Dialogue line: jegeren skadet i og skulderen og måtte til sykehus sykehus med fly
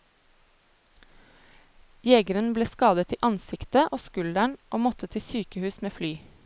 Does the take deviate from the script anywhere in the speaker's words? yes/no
yes